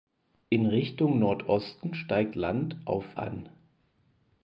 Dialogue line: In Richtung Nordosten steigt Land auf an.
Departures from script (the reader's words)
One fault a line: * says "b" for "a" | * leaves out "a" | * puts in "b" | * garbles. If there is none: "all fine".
all fine